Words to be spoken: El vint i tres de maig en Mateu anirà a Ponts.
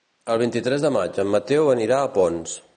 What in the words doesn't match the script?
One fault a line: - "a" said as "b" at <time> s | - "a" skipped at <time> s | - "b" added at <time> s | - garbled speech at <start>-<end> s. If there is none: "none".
none